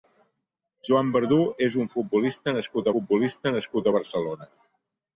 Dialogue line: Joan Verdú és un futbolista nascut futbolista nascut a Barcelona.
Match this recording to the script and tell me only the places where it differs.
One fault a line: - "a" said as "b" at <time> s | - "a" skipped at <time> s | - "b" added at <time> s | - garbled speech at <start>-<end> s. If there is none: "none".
none